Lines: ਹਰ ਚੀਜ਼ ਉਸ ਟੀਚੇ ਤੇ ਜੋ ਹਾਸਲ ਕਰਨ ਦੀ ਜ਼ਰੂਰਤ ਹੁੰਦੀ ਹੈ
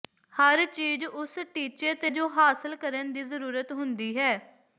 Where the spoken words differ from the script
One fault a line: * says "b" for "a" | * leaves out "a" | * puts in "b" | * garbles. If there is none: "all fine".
all fine